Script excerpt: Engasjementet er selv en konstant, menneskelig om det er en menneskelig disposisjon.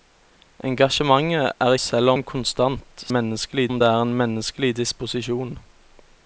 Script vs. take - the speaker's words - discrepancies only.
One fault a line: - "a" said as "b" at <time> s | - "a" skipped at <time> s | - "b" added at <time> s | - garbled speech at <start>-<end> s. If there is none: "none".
none